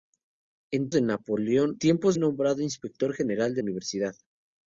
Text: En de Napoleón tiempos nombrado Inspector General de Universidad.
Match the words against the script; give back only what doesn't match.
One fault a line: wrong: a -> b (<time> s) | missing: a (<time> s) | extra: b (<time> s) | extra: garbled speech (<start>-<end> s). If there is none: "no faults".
no faults